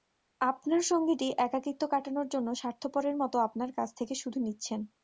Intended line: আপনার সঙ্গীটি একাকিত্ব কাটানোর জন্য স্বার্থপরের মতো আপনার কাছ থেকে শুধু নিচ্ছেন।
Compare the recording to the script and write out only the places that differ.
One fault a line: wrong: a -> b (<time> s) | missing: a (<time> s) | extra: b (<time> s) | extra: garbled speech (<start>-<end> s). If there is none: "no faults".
no faults